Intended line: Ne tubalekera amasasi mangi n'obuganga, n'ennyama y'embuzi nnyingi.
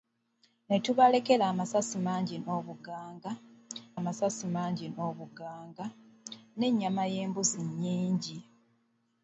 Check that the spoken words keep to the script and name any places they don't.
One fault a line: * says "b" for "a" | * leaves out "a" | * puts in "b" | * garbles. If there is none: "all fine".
* puts in "amasasi mangi n'obuganga"